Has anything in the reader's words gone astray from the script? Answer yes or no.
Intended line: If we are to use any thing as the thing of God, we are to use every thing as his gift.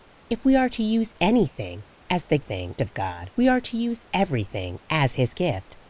no